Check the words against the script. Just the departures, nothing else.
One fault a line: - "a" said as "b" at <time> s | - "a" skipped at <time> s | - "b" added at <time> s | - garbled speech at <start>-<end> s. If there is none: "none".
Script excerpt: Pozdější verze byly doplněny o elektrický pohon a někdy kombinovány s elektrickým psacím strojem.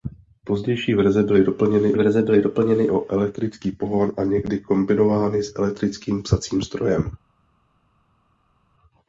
- "verze byly doplněny" added at 1.9 s